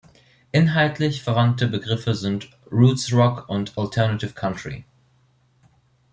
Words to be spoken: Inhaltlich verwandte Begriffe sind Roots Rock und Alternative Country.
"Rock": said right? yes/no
yes